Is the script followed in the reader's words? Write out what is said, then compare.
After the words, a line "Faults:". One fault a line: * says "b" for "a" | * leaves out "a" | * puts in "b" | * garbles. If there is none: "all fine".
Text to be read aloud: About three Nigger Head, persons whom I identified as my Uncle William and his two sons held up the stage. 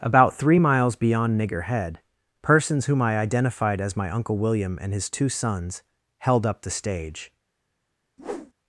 About three miles beyond Nigger Head, persons whom I identified as my Uncle William and his two sons held up the stage.
Faults:
* puts in "miles beyond"